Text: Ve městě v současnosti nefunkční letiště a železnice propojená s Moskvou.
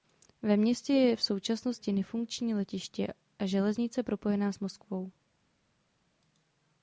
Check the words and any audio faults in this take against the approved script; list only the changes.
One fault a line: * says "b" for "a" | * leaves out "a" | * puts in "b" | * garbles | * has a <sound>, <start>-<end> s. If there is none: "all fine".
* puts in "je"